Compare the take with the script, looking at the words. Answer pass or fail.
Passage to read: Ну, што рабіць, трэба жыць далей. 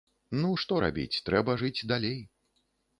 pass